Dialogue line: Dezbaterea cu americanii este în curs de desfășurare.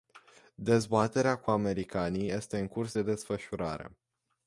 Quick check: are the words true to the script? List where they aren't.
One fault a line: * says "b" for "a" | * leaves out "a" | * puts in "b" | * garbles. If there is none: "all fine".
all fine